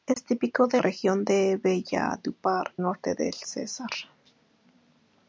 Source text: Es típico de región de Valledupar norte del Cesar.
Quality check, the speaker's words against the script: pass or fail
pass